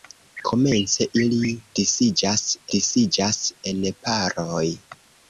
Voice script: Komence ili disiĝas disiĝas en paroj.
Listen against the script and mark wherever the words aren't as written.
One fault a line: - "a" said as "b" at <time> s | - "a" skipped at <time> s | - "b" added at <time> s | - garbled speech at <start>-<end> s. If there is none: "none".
none